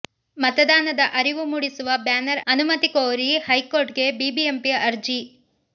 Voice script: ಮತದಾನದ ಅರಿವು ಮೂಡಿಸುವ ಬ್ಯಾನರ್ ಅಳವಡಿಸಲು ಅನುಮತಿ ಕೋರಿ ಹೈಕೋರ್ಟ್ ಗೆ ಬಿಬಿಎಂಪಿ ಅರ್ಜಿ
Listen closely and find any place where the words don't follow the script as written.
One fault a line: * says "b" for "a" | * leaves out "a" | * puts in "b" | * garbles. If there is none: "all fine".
* leaves out "ಅಳವಡಿಸಲು"